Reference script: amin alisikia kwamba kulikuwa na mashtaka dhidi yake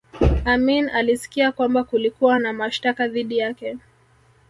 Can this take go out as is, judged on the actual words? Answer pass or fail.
pass